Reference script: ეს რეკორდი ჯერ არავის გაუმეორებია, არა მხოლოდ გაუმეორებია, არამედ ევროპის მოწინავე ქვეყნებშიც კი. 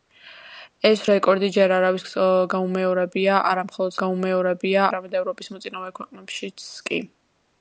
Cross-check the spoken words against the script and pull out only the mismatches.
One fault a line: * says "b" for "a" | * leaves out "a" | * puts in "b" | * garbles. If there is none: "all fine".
all fine